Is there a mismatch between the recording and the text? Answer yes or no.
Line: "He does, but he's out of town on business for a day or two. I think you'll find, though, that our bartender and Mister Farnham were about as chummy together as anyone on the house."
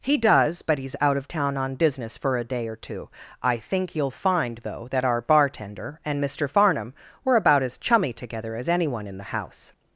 yes